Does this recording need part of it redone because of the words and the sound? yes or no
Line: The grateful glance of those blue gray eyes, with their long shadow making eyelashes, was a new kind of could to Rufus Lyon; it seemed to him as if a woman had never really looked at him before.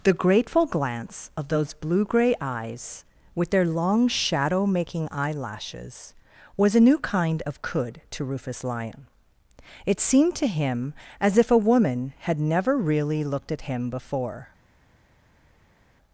no